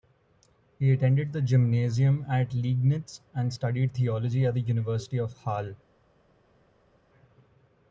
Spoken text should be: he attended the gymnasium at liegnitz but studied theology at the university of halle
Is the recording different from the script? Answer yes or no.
yes